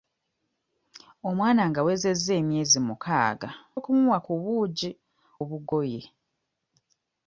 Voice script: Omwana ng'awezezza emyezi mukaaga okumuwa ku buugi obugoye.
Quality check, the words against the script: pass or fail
pass